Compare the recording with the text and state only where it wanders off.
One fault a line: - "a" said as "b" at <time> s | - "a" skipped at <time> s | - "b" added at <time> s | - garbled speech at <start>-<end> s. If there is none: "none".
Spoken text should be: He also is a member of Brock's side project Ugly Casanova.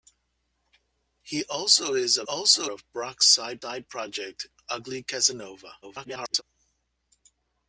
- "member" said as "also" at 2.2 s
- "side" added at 3.6 s
- garbled speech at 5.8-6.4 s